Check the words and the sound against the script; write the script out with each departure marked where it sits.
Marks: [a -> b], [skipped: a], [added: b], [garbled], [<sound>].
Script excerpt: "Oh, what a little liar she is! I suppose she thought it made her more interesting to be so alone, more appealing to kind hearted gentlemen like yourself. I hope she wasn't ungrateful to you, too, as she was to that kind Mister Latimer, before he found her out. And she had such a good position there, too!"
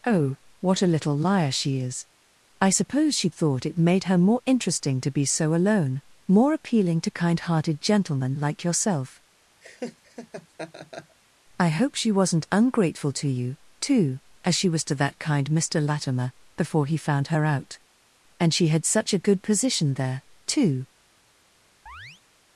"Oh, what a little liar she is! I suppose she thought it made her more interesting to be so alone, more appealing to kind hearted gentlemen like yourself. [laugh] I hope she wasn't ungrateful to you, too, as she was to that kind Mister Latimer, before he found her out. And she had such a good position there, too!" [chirp]